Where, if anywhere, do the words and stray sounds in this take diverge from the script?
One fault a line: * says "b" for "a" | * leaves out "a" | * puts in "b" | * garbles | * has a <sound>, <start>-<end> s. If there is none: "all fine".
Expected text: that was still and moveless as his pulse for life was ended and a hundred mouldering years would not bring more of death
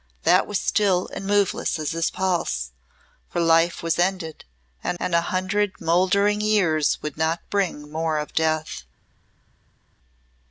* puts in "and"